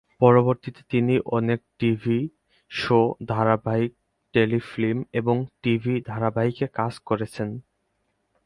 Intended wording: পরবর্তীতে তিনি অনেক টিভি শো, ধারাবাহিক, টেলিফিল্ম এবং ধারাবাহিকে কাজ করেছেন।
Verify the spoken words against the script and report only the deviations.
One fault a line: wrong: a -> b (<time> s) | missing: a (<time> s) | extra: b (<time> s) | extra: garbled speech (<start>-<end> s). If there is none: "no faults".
extra: টিভি (5.6 s)